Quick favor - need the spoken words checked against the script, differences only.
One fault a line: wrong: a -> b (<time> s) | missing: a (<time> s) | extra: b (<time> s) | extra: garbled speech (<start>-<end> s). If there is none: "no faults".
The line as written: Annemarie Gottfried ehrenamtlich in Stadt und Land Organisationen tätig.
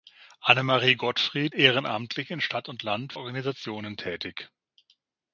no faults